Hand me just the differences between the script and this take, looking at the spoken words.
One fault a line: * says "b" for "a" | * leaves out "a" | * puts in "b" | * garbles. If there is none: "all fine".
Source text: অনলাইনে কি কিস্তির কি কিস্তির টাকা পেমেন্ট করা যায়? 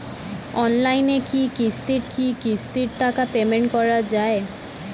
all fine